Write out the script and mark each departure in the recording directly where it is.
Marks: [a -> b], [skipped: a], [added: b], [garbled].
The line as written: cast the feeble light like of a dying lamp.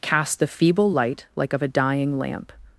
cast the feeble light like of a dying lamp.